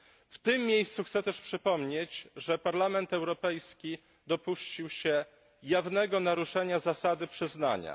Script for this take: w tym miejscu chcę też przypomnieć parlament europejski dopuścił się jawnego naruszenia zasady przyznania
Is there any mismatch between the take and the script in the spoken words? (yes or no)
yes